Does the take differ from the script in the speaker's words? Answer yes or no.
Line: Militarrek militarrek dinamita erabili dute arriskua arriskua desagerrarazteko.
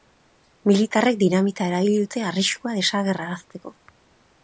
yes